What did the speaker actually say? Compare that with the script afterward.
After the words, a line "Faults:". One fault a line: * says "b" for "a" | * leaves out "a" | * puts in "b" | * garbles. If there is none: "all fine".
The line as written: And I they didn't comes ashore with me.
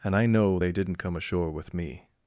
And I know they didn't come ashore with me.
Faults:
* puts in "know"
* says "come" for "comes"